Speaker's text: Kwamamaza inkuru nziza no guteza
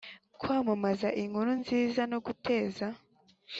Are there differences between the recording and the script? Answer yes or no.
no